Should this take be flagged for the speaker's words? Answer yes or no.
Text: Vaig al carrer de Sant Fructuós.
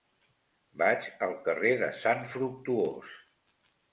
no